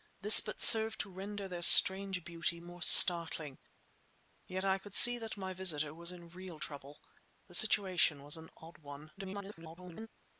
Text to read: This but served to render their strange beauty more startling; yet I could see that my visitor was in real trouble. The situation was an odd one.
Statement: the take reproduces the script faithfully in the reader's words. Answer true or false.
false